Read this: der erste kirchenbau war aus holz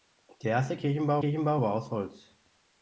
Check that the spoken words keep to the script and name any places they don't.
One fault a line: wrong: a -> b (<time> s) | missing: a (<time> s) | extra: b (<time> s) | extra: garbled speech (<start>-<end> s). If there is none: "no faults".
extra: kirchenbau (1.2 s)